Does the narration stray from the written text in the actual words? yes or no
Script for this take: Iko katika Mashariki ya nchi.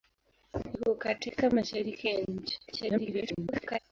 yes